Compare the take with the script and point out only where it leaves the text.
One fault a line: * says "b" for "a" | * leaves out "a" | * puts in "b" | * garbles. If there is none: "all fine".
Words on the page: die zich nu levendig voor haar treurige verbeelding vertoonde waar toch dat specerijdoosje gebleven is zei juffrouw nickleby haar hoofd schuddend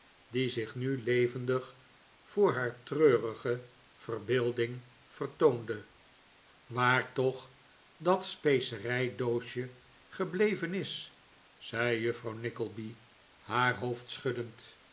all fine